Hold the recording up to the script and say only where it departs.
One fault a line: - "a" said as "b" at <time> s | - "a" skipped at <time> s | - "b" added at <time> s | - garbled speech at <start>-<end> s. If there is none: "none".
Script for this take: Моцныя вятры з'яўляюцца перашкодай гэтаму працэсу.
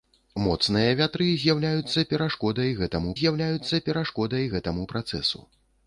- "з'яўляюцца перашкодай гэтаму" added at 3.2 s